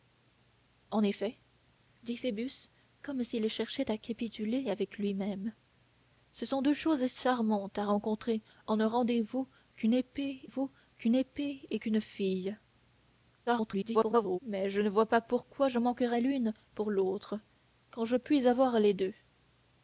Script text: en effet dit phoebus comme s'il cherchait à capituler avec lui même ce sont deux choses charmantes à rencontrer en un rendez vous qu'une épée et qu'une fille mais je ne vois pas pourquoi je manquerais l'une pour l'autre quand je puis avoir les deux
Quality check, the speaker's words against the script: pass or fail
fail